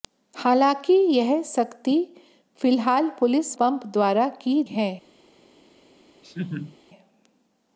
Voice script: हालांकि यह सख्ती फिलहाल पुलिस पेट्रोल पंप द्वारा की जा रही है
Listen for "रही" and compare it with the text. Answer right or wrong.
wrong